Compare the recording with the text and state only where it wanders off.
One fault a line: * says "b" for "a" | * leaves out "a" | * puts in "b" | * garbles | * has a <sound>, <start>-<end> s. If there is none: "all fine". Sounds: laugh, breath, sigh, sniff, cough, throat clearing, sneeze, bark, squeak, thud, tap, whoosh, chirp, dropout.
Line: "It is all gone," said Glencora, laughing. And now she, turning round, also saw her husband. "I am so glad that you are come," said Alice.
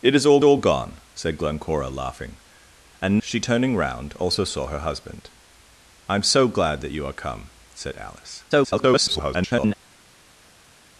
* puts in "all"
* leaves out "now"
* garbles